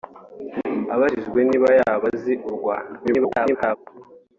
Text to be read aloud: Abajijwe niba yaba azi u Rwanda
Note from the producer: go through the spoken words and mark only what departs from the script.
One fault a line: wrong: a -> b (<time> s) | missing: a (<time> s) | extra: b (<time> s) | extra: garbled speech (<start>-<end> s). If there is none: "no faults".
extra: garbled speech (3.0-3.8 s)